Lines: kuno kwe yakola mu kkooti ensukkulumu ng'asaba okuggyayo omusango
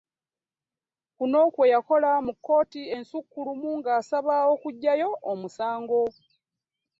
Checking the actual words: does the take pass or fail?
pass